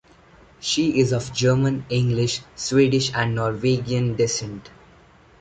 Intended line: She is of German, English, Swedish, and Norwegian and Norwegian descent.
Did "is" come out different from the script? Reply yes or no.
no